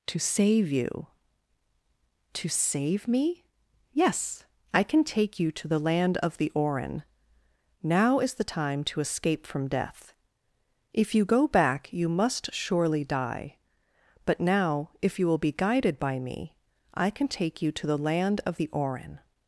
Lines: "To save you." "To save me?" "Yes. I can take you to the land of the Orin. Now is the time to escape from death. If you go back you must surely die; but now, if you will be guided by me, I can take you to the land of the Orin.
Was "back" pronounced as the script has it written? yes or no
yes